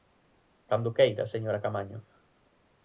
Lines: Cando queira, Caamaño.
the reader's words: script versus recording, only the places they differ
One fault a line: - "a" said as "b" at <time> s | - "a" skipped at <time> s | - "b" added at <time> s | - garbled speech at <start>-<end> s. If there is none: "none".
- "señora" added at 1.3 s